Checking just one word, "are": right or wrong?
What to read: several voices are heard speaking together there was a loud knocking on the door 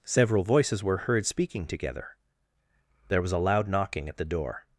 wrong